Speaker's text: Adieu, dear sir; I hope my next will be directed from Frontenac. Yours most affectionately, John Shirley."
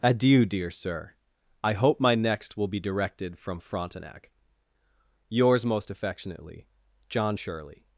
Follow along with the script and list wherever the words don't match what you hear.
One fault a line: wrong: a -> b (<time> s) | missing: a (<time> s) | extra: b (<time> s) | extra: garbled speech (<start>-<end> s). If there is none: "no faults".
no faults